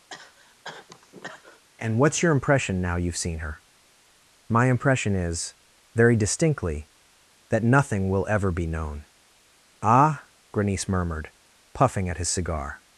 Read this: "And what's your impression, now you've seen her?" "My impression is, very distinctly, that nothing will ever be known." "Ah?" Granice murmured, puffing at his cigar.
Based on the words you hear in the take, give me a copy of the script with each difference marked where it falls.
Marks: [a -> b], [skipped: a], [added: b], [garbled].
"And what's your impression, now you've seen her?" "My impression is, very distinctly, that nothing will ever be known." "Ah?" Granice murmured, puffing at his cigar.